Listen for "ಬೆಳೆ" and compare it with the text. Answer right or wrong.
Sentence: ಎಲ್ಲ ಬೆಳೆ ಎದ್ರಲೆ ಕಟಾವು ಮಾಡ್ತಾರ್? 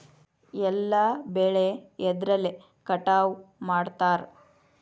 right